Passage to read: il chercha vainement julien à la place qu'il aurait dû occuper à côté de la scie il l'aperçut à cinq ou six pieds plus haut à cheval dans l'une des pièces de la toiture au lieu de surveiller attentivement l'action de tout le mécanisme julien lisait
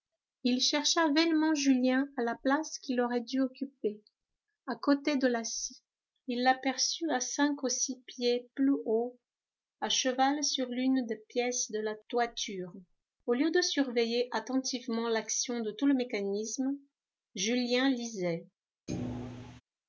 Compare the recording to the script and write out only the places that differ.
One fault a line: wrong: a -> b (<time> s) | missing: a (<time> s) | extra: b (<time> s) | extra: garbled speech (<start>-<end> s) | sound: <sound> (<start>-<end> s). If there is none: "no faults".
wrong: dans -> sur (10.4 s)
sound: thud (18.9-19.6 s)